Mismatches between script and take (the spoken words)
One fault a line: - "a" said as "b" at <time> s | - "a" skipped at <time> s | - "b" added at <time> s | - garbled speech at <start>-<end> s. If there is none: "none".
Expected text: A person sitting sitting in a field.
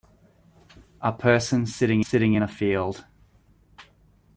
none